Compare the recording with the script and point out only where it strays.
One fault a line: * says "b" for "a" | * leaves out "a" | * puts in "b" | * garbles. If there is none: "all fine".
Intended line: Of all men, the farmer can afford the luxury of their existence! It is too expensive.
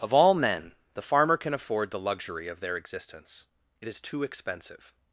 all fine